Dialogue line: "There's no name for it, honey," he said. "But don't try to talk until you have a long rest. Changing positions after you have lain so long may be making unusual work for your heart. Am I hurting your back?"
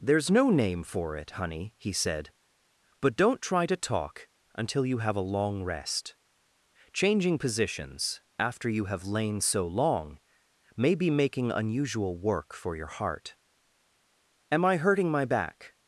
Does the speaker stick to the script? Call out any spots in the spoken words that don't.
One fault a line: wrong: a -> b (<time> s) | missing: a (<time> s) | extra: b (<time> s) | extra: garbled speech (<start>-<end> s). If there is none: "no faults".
wrong: your -> my (15.1 s)